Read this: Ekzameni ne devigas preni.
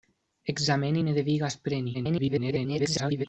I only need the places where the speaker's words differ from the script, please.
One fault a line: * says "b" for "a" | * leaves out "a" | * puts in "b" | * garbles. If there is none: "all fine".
* garbles